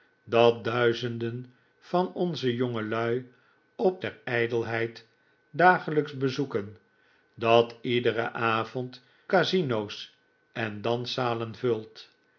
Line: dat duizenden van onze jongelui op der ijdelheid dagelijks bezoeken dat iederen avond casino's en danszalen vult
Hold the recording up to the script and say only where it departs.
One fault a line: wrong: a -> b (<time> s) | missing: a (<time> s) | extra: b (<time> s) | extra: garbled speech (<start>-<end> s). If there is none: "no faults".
no faults